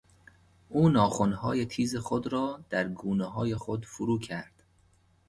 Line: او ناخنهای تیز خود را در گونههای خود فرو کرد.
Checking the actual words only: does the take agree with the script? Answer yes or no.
yes